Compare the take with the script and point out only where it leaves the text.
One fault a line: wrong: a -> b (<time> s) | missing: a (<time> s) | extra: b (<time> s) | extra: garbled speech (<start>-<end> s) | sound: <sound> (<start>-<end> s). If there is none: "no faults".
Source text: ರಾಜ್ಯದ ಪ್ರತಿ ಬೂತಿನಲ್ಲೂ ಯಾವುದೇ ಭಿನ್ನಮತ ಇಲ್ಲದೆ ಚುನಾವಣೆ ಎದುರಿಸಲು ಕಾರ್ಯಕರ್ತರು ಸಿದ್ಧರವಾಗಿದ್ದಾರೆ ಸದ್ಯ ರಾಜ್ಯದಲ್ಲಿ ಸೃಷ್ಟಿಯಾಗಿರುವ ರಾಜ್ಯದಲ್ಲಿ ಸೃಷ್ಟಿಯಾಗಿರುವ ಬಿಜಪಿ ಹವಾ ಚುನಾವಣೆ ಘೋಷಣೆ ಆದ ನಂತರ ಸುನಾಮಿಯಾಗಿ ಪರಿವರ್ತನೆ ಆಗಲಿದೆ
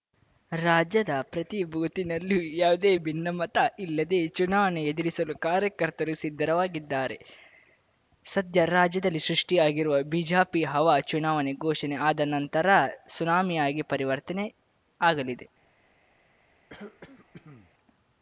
missing: ರಾಜ್ಯದಲ್ಲಿ ಸೃಷ್ಟಿಯಾಗಿರುವ (10.0 s)
sound: throat clearing (16.7-17.7 s)